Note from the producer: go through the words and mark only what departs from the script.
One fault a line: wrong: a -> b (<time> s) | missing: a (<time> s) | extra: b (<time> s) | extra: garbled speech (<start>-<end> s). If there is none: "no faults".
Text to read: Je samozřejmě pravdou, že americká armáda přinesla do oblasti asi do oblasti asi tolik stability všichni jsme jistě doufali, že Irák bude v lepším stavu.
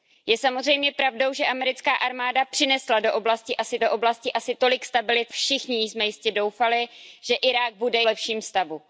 no faults